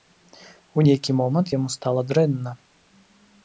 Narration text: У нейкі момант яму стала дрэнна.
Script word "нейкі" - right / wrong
right